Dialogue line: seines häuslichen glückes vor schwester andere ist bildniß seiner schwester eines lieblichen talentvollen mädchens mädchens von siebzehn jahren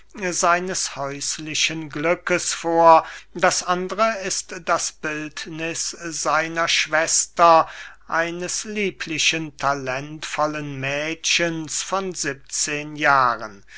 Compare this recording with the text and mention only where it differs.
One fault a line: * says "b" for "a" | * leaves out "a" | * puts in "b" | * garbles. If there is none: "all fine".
* says "das" for "schwester"
* puts in "das"
* leaves out "mädchens"